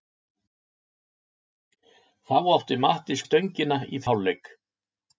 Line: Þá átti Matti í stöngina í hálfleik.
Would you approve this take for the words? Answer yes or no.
yes